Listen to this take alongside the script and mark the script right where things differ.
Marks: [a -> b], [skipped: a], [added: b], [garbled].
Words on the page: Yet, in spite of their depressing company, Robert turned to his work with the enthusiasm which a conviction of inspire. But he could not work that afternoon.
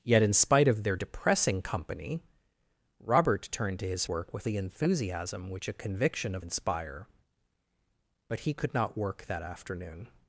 Yet, in spite of their depressing company, Robert turned to his work with the enthusiasm which a conviction of inspire. But he could not work that afternoon.